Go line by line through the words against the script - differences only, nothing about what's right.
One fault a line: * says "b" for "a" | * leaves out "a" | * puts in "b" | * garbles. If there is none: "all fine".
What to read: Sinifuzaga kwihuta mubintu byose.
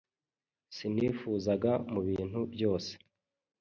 * leaves out "kwihuta"